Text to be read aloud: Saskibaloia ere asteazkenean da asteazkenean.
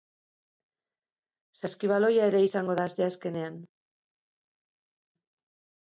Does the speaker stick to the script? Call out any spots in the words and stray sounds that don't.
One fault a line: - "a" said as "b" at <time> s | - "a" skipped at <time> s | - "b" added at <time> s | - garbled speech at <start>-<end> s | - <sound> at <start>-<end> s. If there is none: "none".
- "asteazkenean" said as "izango" at 2.5 s